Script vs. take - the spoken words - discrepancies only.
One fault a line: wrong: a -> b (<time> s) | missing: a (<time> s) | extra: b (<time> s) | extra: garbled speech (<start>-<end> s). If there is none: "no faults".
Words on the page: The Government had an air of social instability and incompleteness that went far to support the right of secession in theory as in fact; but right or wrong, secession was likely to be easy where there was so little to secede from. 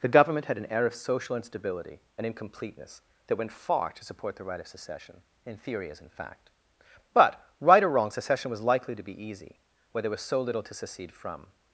no faults